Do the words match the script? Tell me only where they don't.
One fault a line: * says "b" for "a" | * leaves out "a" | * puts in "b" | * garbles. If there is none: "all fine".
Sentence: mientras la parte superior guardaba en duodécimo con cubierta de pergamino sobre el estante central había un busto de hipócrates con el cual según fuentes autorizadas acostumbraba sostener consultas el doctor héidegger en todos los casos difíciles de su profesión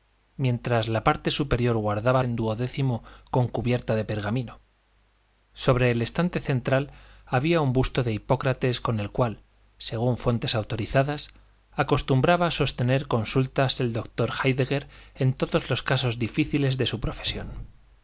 all fine